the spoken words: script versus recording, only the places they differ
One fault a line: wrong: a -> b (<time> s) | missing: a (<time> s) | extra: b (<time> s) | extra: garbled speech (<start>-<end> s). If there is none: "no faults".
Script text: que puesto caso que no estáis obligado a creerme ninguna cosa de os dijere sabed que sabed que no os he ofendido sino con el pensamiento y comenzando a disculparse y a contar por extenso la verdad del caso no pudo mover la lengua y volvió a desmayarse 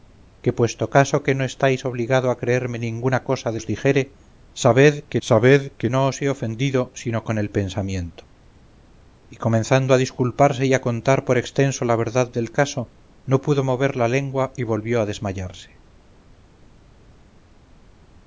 no faults